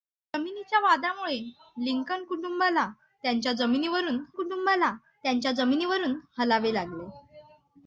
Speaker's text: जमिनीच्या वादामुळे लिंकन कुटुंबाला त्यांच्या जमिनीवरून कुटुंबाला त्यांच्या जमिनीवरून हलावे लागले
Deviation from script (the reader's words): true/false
false